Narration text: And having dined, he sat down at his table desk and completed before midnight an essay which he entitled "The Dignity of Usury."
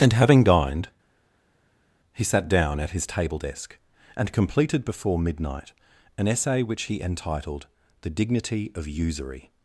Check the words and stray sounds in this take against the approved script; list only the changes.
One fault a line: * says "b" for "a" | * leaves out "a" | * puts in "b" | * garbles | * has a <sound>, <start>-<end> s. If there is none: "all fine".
all fine